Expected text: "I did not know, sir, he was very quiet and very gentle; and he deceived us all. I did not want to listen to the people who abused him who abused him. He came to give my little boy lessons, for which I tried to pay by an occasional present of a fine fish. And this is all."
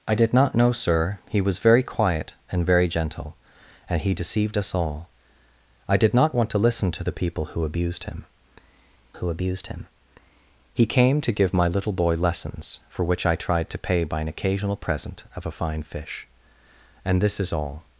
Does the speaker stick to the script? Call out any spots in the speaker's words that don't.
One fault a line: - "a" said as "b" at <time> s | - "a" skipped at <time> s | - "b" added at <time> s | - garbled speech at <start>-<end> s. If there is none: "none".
none